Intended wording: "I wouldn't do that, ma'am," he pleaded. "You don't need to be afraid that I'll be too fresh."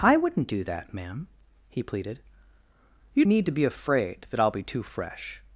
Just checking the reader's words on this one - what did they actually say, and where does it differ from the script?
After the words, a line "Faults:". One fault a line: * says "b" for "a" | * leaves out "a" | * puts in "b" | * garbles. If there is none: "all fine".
"I wouldn't do that, ma'am," he pleaded. "You need to be afraid that I'll be too fresh."
Faults:
* leaves out "don't"